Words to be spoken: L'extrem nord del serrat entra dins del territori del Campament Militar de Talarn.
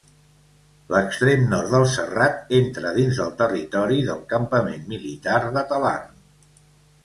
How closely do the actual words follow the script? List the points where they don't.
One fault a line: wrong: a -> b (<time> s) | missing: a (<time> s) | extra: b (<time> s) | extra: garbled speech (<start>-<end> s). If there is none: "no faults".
no faults